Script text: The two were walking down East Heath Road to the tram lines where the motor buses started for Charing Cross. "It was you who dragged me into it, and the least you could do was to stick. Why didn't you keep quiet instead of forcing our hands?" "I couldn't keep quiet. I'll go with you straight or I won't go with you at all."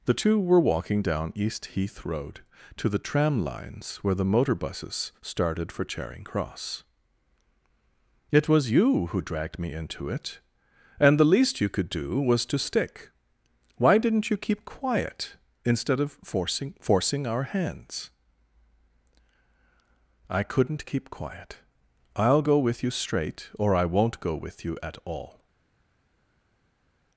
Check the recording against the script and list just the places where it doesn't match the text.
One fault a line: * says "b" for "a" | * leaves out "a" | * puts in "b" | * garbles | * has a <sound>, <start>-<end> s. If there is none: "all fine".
* puts in "forcing"